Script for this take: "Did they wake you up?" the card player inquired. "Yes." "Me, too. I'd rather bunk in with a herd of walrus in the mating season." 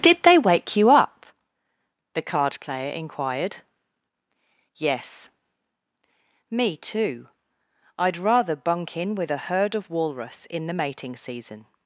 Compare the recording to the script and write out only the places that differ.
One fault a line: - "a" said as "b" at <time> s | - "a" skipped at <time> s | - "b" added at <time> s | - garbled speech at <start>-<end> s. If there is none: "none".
none